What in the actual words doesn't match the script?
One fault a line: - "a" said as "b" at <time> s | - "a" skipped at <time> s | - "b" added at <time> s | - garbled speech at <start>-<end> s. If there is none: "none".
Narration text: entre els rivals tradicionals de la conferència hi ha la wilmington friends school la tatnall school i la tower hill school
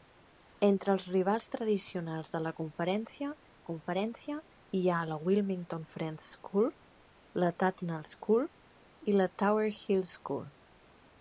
- "conferència" added at 3.7 s